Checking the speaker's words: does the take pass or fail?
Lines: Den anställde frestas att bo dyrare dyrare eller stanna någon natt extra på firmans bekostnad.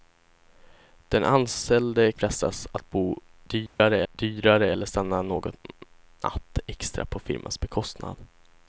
pass